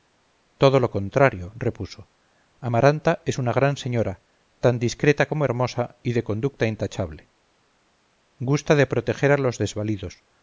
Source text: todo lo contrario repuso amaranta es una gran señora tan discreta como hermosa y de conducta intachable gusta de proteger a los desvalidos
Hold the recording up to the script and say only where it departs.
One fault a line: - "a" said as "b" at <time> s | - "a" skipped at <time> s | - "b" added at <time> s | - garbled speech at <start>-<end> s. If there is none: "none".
none